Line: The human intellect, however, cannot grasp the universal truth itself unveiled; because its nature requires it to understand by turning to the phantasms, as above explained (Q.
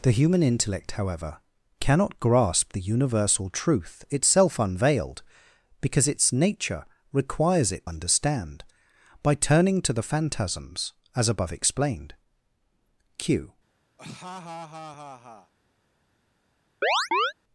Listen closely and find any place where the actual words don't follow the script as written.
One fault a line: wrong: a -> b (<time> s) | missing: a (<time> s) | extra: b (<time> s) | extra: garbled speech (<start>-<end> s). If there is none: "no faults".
missing: to (7.9 s)